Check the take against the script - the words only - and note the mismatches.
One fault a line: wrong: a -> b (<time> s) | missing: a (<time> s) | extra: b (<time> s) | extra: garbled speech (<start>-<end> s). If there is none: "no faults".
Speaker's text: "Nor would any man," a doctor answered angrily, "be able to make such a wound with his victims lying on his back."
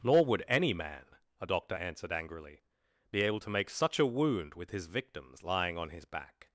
no faults